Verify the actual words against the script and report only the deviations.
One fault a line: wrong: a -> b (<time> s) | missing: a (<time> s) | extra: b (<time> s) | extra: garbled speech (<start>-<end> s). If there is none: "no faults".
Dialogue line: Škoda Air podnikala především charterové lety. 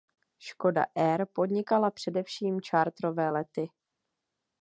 no faults